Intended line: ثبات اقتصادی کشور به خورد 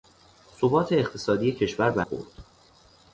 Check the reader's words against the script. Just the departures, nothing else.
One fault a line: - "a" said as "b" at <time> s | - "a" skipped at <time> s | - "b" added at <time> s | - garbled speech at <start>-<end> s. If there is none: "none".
none